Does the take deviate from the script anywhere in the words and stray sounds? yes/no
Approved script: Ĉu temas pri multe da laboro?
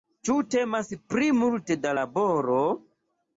no